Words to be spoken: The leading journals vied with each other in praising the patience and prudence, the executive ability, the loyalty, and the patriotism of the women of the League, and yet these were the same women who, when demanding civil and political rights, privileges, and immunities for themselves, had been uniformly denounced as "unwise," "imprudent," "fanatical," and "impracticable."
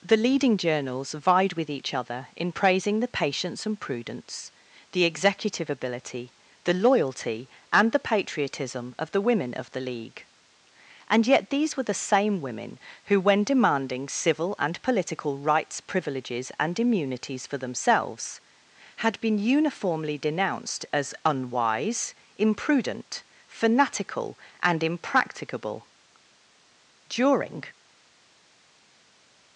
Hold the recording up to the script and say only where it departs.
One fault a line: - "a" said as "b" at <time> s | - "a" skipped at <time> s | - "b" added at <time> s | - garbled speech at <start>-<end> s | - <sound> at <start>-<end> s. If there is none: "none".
- "During" added at 27.1 s